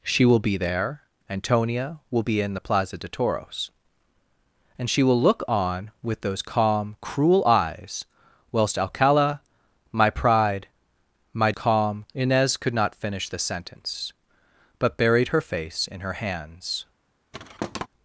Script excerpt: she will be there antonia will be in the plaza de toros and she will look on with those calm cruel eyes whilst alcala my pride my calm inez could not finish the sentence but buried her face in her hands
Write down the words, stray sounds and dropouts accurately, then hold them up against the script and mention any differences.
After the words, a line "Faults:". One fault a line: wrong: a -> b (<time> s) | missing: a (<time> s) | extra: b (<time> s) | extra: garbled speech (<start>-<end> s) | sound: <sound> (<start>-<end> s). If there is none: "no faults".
she will be there antonia will be in the plaza de toros and she will look on with those calm cruel eyes whilst alcala my pride my calm inez could not finish the sentence but buried her face in her hands
Faults:
sound: thud (17.3-17.9 s)